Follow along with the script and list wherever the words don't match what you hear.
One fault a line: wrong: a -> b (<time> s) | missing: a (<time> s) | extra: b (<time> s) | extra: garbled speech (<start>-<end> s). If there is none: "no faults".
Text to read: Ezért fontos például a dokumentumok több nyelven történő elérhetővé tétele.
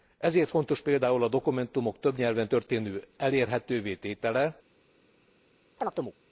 no faults